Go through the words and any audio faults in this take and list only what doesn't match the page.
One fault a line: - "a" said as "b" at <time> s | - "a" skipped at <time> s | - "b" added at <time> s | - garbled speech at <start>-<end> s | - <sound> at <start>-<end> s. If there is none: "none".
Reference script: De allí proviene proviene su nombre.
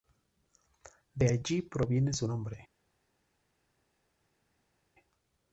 - "proviene" skipped at 2.1 s